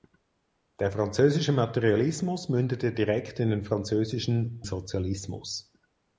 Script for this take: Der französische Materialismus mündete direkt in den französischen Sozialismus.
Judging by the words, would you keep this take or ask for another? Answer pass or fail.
pass